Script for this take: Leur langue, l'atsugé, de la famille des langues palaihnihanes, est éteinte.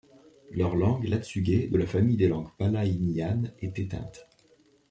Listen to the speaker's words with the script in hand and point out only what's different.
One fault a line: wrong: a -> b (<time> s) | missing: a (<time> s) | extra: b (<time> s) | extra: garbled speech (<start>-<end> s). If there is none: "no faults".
no faults